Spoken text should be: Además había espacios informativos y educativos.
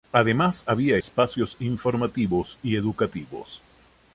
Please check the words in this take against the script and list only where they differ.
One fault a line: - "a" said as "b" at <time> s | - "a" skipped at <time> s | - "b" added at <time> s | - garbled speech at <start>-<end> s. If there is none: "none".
none